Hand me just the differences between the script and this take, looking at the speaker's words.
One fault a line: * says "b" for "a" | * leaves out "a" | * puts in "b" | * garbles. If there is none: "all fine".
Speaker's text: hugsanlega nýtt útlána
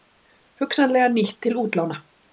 * puts in "til"